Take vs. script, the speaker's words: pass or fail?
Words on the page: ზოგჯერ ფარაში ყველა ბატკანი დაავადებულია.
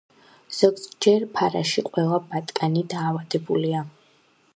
pass